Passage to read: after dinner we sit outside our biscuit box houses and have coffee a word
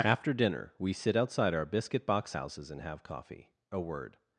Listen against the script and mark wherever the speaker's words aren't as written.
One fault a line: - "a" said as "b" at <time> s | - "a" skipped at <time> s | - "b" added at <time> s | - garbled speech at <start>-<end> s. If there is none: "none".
none